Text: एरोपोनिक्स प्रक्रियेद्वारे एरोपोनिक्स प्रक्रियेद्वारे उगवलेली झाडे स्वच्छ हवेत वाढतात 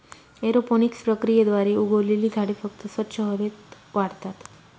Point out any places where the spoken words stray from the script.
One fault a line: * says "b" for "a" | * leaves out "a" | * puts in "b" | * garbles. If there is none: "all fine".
* leaves out "एरोपोनिक्स प्रक्रियेद्वारे"
* puts in "फक्त"